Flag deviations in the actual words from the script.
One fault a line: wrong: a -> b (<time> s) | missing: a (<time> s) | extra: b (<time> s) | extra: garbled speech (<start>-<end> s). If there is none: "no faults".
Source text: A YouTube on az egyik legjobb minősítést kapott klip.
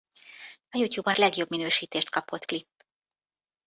missing: az egyik (1.2 s)